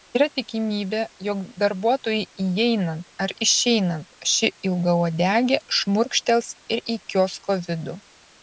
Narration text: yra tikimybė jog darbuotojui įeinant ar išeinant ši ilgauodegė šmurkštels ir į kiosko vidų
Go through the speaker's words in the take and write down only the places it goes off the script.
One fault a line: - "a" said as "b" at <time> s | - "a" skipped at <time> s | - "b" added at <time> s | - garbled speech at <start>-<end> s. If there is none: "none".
none